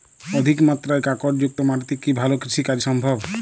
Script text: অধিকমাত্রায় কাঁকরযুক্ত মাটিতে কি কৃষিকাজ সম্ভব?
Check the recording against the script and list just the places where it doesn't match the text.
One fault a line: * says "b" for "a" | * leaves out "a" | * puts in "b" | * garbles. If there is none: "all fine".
* puts in "ভালো"